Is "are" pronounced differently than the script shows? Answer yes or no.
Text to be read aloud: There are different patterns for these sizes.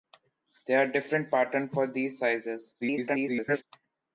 no